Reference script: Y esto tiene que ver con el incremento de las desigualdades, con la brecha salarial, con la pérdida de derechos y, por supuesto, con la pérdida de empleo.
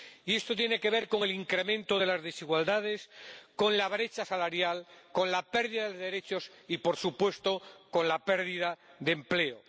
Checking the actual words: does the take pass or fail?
pass